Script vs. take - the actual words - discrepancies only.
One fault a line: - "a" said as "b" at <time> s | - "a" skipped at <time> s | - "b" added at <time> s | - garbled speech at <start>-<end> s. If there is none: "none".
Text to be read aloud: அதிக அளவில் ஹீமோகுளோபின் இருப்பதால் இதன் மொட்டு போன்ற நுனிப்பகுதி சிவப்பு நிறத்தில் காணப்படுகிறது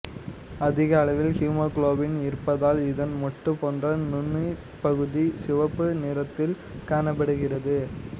none